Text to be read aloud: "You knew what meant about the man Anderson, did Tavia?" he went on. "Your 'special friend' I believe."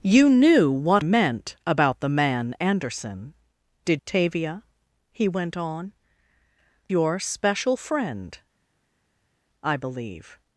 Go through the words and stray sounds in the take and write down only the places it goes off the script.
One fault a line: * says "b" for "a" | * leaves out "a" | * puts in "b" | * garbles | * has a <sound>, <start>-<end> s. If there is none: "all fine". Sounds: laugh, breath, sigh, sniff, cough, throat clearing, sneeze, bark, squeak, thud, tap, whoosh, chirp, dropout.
all fine